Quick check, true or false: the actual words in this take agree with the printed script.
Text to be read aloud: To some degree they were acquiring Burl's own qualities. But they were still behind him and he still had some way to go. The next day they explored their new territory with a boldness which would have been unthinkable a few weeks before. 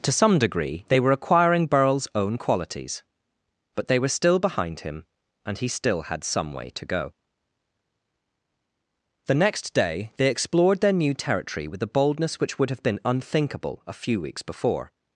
true